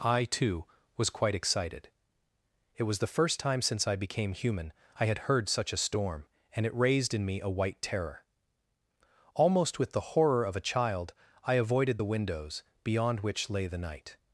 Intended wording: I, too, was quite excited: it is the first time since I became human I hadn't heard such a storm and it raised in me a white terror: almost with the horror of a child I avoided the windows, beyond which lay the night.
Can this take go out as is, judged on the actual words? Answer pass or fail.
fail